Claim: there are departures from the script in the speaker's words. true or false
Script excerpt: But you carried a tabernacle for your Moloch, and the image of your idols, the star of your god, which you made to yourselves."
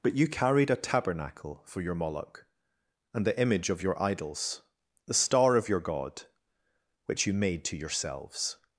false